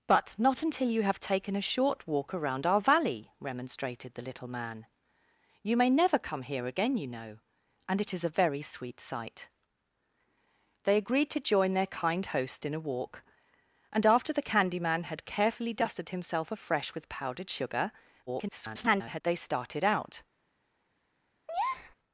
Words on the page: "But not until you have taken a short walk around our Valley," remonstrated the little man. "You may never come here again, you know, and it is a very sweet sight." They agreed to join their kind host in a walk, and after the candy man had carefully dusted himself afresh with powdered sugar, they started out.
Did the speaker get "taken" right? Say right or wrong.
right